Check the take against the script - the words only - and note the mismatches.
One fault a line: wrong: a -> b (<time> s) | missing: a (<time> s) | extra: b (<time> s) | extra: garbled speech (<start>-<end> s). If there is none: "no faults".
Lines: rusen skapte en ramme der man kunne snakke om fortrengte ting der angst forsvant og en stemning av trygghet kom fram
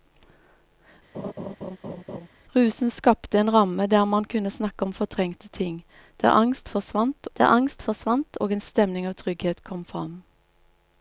extra: der angst forsvant (7.4 s)